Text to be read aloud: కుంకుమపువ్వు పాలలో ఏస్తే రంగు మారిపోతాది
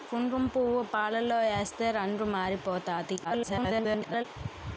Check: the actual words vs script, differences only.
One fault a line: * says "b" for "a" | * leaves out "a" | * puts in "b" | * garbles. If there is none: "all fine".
* garbles